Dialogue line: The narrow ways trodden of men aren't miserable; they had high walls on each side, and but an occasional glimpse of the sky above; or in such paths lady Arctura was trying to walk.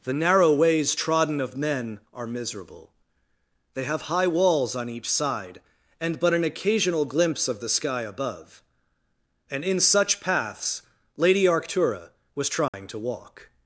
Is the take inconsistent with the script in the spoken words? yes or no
yes